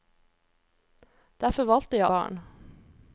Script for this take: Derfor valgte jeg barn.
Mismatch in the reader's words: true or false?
false